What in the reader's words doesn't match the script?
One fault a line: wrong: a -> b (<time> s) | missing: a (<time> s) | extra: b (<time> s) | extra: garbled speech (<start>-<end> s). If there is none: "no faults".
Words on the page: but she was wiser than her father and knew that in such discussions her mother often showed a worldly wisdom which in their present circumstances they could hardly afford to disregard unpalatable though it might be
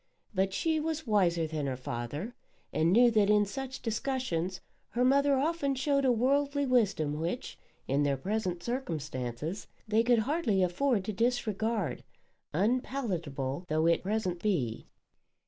wrong: might -> present (14.0 s)